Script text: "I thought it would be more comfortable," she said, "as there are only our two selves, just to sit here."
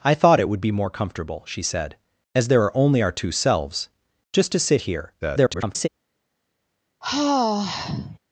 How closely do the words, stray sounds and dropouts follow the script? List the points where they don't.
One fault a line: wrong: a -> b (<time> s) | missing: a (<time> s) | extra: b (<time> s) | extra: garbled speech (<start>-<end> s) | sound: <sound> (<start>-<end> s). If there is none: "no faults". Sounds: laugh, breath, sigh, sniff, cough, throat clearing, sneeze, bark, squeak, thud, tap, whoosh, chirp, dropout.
extra: garbled speech (5.2-5.9 s)
sound: sigh (7.0-8.2 s)